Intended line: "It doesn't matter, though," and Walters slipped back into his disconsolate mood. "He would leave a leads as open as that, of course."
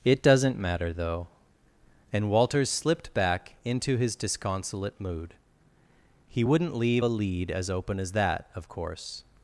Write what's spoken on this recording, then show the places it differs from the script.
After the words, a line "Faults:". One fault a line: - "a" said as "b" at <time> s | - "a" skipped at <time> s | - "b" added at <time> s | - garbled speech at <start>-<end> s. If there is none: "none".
"It doesn't matter, though," and Walters slipped back into his disconsolate mood. "He wouldn't leave a lead as open as that, of course."
Faults:
- "would" said as "wouldn't" at 6.4 s
- "leads" said as "lead" at 7.1 s